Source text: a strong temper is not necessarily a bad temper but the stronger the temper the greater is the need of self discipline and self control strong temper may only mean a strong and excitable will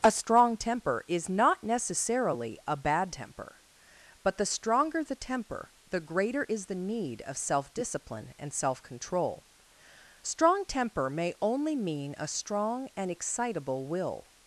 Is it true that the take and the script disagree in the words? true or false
false